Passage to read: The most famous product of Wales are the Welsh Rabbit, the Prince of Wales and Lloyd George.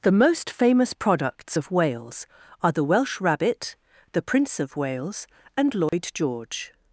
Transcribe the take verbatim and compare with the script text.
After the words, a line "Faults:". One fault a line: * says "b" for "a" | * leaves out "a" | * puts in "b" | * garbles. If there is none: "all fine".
The most famous products of Wales are the Welsh Rabbit, the Prince of Wales and Lloyd George.
Faults:
* says "products" for "product"